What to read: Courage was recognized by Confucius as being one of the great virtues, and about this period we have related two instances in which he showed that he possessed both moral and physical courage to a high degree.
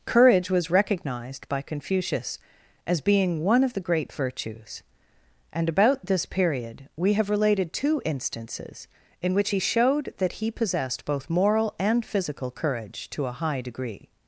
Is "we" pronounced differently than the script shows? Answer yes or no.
no